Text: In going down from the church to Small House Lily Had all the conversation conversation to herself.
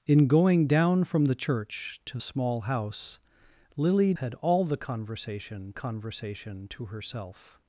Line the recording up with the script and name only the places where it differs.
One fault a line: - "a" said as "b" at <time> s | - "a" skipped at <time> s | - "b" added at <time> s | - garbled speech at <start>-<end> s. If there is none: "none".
none